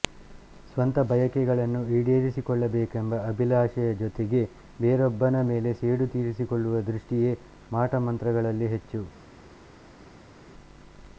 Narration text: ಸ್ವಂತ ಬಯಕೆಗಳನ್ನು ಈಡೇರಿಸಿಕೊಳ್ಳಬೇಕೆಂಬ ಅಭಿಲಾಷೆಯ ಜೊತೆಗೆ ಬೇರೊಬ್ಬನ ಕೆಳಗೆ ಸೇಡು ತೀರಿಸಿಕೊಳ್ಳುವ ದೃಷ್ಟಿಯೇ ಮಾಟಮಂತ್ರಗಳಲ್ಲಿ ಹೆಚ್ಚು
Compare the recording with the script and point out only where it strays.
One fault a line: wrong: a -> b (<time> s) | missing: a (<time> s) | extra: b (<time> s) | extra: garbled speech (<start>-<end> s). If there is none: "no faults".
wrong: ಕೆಳಗೆ -> ಮೇಲೆ (5.5 s)